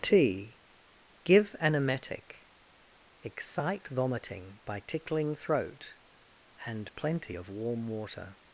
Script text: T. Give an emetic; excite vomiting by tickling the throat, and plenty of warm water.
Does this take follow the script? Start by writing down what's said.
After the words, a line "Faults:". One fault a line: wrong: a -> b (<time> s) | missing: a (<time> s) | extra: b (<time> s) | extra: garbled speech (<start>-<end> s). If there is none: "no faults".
T. Give an emetic; excite vomiting by tickling throat, and plenty of warm water.
Faults:
missing: the (5.3 s)